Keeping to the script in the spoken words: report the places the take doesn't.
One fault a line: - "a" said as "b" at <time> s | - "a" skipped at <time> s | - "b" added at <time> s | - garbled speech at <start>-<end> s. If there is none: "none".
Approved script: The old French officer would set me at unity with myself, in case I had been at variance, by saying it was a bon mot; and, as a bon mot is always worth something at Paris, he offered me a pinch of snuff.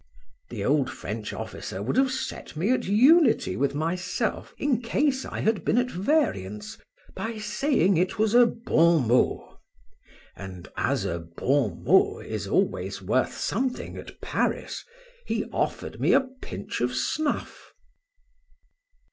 - "have" added at 1.9 s